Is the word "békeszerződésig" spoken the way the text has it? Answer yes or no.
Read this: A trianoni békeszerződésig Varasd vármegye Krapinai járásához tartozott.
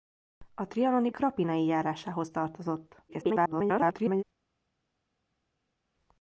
no